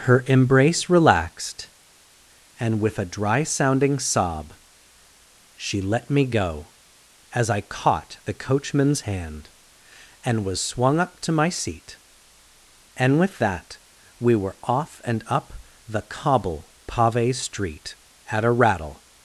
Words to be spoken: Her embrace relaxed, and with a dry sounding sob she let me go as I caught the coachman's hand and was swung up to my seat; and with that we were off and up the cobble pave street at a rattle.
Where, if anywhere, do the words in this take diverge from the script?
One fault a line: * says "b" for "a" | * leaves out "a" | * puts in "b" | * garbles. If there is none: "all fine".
all fine